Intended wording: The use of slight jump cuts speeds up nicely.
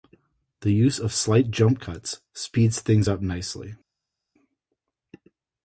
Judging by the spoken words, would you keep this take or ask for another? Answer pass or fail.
fail